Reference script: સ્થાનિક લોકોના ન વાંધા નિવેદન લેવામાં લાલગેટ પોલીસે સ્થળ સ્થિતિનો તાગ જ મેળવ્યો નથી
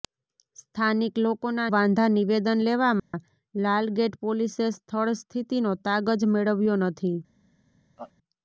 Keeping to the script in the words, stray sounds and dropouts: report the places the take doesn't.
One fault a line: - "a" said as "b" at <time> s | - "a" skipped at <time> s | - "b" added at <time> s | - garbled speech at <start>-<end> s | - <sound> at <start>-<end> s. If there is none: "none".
- "ન" skipped at 1.7 s
- dropout at 3.0-3.1 s
- laugh at 8.0-8.1 s